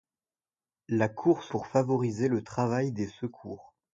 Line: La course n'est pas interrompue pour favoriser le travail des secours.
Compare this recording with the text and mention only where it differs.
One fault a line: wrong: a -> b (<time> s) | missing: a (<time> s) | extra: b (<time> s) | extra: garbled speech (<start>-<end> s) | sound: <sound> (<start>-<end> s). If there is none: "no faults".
missing: n'est pas interrompue (1.5 s)